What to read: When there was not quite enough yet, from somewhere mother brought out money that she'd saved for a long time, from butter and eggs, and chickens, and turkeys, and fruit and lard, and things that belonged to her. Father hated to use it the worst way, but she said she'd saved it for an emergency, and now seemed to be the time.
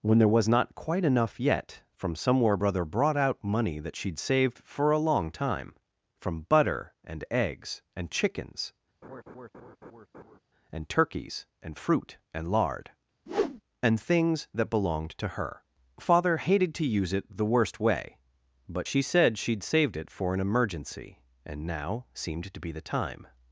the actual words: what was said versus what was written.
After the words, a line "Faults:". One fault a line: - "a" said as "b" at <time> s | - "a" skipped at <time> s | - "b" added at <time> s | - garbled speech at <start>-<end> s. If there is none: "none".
When there was not quite enough yet, from somewhere brother brought out money that she'd saved for a long time, from butter and eggs, and chickens, and turkeys, and fruit and lard, and things that belonged to her. Father hated to use it the worst way, but she said she'd saved it for an emergency, and now seemed to be the time.
Faults:
- "mother" said as "brother" at 2.5 s